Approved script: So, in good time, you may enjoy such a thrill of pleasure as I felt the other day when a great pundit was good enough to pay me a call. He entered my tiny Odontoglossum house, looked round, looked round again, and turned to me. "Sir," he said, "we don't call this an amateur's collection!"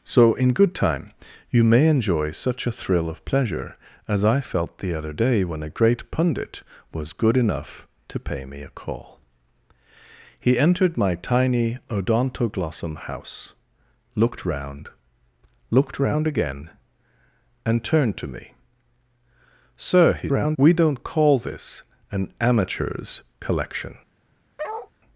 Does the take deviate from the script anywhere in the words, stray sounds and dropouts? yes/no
yes